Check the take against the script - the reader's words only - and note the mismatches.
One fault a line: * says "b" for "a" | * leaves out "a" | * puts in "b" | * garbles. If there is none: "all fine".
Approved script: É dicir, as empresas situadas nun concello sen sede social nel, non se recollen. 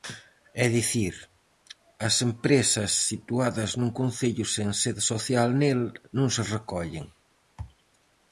all fine